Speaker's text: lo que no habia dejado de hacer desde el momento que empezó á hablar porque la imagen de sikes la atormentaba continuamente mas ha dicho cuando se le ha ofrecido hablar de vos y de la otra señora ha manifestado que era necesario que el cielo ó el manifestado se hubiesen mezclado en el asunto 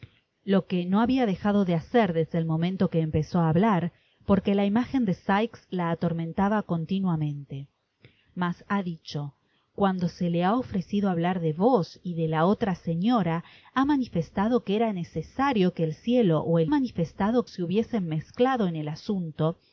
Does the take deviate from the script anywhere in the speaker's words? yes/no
no